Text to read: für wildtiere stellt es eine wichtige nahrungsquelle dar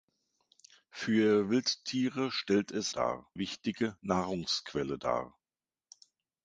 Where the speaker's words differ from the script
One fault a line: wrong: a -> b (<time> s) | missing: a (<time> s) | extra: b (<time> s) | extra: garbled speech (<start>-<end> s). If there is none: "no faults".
wrong: eine -> dar (2.9 s)